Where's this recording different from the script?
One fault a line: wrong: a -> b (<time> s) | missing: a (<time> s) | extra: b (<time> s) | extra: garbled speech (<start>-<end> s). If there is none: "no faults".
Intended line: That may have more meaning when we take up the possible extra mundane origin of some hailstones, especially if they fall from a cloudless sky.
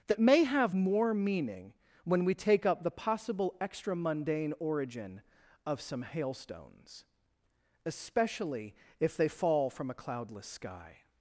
no faults